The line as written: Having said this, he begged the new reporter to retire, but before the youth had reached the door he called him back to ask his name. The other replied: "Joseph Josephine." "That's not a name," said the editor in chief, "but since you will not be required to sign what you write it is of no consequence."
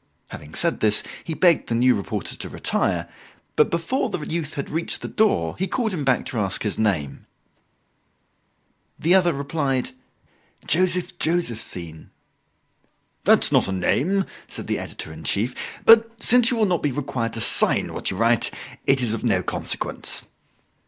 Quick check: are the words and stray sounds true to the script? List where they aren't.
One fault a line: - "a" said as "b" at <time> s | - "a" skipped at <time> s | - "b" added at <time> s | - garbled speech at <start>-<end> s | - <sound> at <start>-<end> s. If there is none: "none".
none